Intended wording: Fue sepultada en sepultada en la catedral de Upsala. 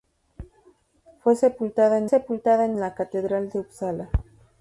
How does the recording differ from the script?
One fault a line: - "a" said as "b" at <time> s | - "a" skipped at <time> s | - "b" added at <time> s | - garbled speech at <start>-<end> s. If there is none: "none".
none